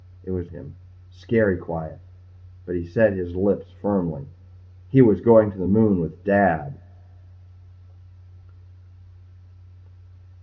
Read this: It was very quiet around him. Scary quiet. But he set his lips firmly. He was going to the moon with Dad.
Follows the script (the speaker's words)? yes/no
no